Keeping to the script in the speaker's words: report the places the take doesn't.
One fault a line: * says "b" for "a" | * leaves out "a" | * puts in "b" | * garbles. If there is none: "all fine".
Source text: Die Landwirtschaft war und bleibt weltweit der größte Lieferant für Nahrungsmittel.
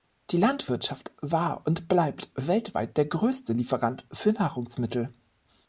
all fine